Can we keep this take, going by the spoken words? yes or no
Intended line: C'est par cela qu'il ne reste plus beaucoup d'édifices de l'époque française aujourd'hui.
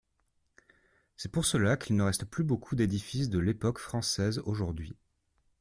no